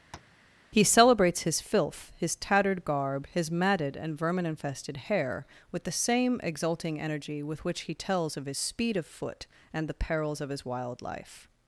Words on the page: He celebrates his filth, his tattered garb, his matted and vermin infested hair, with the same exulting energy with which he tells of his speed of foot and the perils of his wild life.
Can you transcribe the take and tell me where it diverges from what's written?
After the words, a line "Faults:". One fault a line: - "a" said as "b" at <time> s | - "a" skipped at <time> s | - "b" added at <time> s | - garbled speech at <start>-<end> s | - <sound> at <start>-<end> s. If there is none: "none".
He celebrates his filth, his tattered garb, his matted and vermin infested hair, with the same exulting energy with which he tells of his speed of foot and the perils of his wild life.
Faults:
- tap at 0.1-0.4 s